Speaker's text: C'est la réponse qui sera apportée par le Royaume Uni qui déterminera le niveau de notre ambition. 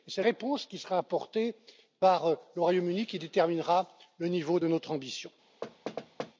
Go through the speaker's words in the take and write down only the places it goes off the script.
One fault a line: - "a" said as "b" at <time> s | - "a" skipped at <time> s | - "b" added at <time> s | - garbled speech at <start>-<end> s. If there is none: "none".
- "la" skipped at 0.2 s